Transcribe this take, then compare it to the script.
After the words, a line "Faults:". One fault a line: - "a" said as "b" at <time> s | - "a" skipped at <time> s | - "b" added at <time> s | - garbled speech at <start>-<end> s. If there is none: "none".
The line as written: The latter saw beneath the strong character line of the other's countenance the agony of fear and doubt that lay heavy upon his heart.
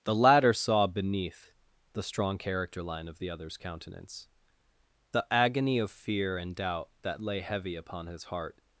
The latter saw beneath the strong character line of the other's countenance the agony of fear and doubt that lay heavy upon his heart.
Faults:
none